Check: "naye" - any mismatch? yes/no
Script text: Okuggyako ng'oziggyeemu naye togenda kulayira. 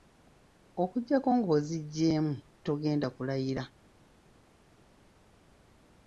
yes